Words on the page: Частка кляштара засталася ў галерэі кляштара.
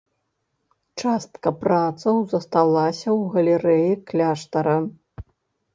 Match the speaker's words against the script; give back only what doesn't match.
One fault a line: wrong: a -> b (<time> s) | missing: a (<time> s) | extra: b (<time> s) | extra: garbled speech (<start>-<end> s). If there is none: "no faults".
wrong: кляштара -> працаў (1.6 s)